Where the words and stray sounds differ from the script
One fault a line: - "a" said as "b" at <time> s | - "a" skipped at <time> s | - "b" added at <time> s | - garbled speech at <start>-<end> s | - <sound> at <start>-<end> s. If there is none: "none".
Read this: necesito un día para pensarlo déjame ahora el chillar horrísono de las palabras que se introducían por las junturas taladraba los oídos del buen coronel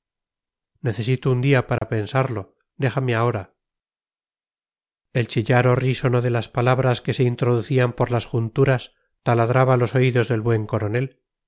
- dropout at 1.8-1.8 s